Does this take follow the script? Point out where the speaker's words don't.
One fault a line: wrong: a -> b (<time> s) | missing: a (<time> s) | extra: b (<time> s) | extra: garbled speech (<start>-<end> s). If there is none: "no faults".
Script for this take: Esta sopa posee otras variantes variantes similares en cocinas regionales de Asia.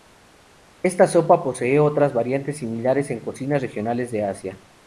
missing: variantes (2.6 s)